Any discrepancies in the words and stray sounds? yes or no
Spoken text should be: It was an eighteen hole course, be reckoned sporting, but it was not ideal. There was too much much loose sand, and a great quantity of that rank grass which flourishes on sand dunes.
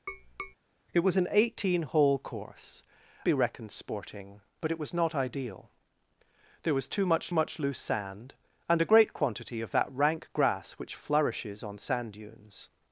yes